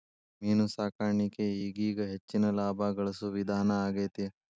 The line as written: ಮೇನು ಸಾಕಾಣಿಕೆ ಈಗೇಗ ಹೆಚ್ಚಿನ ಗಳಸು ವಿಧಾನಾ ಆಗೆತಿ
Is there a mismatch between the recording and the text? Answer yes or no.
yes